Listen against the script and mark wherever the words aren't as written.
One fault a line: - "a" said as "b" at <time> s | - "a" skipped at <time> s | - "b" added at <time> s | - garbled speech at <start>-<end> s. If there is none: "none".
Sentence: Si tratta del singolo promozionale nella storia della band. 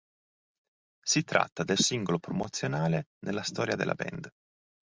none